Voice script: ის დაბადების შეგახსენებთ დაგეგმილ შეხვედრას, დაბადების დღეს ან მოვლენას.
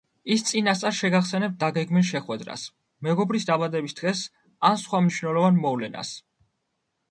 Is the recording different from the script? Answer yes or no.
yes